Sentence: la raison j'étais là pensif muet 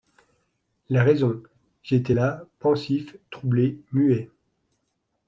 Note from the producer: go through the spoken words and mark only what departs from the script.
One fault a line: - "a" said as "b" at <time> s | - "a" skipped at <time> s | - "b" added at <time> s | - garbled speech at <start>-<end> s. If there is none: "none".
- "troublé" added at 3.3 s